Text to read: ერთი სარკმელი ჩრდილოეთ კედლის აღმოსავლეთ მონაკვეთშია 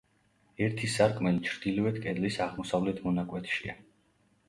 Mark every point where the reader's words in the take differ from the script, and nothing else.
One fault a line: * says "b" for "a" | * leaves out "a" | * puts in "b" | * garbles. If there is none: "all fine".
all fine